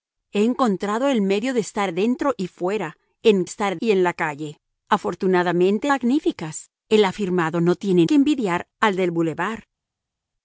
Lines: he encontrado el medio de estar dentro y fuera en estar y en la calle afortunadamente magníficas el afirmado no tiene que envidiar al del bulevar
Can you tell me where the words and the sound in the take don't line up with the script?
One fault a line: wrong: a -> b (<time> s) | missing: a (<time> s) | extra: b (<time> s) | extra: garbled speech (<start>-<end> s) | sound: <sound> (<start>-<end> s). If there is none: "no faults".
no faults